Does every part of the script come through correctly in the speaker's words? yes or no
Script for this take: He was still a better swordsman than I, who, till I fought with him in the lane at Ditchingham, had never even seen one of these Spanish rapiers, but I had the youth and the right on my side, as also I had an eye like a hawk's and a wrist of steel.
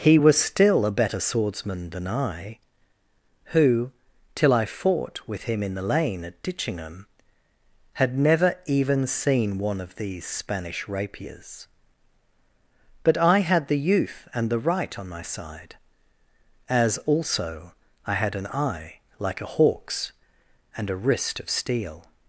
yes